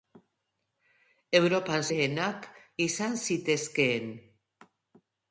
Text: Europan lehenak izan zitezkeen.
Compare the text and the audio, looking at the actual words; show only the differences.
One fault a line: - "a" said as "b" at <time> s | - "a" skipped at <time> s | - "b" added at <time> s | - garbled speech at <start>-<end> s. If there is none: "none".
none